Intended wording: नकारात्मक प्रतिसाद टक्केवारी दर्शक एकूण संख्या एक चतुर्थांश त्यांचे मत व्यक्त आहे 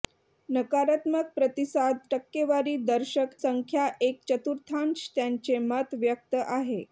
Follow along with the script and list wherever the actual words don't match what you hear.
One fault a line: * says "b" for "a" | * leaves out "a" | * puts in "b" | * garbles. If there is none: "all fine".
* leaves out "एकूण"